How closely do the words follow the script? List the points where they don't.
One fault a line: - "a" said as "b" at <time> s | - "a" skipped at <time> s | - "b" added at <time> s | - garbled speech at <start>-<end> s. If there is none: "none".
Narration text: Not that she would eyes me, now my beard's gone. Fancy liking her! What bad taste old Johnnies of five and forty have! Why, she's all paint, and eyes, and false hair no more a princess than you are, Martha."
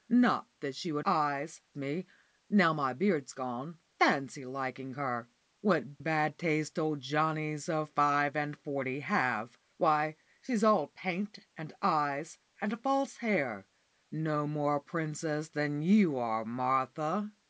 none